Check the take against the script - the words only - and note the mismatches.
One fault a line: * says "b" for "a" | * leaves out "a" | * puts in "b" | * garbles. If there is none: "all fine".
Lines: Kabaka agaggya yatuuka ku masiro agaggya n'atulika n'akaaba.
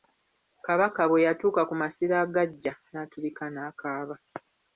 * says "bwe" for "agaggya"